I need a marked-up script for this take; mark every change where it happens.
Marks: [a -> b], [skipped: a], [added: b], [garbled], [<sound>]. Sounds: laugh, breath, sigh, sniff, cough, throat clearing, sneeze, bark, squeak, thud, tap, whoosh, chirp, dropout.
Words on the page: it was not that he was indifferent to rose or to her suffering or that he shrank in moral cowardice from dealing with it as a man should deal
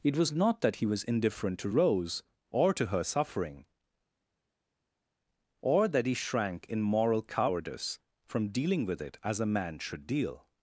it was not that he was indifferent to rose or to her suffering or that he shrank in moral cowardice from dealing with it as a man should deal